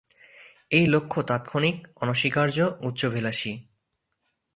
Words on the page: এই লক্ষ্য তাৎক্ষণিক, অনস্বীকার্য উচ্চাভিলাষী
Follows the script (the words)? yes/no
yes